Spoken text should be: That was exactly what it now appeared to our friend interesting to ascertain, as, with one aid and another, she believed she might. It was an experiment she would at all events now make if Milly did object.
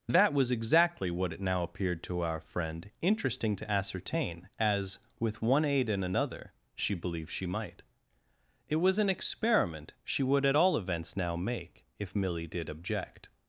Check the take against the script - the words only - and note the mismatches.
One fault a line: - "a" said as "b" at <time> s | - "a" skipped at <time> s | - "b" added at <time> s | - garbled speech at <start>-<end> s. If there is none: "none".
none